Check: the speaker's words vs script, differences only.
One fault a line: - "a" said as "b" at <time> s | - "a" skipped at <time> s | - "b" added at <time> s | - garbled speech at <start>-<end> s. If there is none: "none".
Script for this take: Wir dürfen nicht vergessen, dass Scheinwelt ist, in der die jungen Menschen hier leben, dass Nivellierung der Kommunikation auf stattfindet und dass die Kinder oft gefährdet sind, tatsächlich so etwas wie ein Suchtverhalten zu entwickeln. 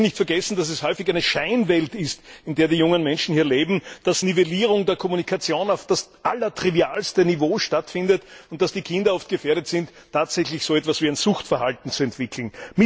- "es häufig eine" added at 0.7 s
- "das allertrivialste Niveau" added at 5.9 s